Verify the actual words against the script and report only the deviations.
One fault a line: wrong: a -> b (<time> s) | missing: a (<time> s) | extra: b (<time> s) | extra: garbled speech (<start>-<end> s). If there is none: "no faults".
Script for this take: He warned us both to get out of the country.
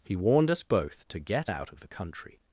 no faults